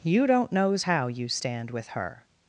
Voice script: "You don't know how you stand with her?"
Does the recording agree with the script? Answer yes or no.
no